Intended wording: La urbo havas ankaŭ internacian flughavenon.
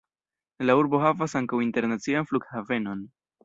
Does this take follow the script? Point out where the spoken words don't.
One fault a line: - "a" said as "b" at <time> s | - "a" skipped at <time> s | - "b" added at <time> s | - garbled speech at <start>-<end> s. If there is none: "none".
none